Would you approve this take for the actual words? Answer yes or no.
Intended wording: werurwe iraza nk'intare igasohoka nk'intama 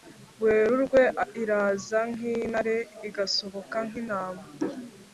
yes